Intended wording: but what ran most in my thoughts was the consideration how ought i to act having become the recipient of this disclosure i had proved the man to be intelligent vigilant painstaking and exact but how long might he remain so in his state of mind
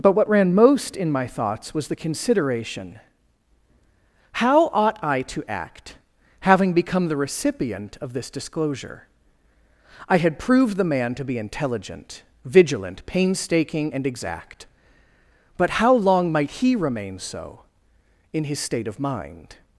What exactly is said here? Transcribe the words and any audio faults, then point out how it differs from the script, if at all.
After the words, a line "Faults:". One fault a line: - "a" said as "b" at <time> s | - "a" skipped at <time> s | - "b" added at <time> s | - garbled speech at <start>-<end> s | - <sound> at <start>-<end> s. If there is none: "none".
but what ran most in my thoughts was the consideration how ought i to act having become the recipient of this disclosure i had proved the man to be intelligent vigilant painstaking and exact but how long might he remain so in his state of mind
Faults:
none